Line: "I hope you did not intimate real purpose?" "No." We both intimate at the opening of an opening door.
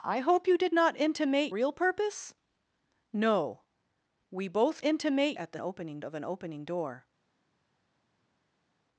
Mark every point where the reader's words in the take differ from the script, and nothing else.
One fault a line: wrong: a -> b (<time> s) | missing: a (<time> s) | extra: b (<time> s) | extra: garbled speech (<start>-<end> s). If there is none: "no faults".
no faults